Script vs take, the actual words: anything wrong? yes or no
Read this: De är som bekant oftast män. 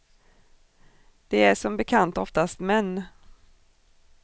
no